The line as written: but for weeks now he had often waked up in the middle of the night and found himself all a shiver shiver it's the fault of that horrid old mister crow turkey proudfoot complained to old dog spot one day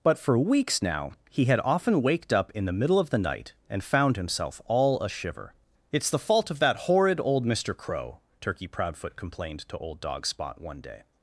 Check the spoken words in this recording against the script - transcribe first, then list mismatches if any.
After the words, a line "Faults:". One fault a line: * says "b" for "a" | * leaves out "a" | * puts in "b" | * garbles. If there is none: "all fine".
but for weeks now he had often waked up in the middle of the night and found himself all a shiver it's the fault of that horrid old mister crow turkey proudfoot complained to old dog spot one day
Faults:
* leaves out "shiver"